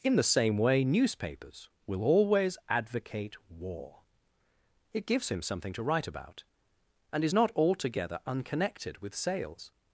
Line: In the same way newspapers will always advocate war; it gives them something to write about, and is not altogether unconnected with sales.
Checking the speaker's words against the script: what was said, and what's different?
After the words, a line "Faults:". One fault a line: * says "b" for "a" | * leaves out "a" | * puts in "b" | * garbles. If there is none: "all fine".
In the same way newspapers will always advocate war; it gives him something to write about, and is not altogether unconnected with sales.
Faults:
* says "him" for "them"